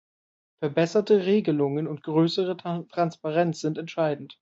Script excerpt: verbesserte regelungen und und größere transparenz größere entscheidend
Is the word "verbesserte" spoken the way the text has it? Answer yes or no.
yes